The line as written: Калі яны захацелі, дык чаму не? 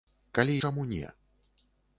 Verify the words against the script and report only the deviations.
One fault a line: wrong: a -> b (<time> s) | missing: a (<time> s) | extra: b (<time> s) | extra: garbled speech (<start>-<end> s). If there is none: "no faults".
missing: яны захацелі дык (0.5 s)